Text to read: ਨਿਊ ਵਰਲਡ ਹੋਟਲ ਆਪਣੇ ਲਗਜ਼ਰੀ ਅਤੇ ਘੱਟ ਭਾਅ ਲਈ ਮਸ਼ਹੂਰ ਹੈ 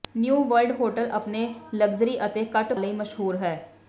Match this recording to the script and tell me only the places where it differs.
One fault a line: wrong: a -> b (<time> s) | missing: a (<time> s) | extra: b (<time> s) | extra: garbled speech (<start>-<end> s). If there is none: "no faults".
missing: ਭਾਅ (2.7 s)